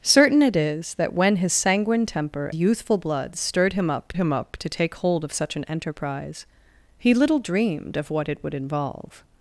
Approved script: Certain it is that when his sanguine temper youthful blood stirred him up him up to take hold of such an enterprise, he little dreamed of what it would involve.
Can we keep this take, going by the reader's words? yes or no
yes